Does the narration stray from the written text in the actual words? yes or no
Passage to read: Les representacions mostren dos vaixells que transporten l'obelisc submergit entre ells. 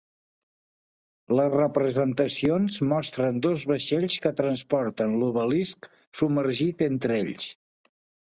no